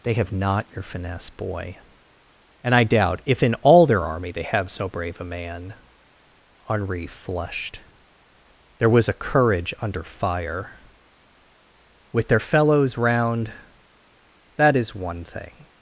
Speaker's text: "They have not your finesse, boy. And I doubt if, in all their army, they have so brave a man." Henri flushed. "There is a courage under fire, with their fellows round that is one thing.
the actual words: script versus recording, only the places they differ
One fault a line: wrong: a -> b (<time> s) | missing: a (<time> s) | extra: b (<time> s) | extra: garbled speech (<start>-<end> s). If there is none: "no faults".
wrong: is -> was (8.9 s)